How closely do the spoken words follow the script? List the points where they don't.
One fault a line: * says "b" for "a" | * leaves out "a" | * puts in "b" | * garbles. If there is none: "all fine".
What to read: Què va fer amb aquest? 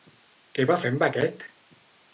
all fine